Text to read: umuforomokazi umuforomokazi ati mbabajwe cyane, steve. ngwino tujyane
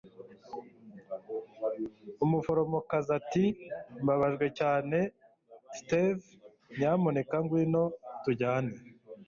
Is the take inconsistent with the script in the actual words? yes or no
yes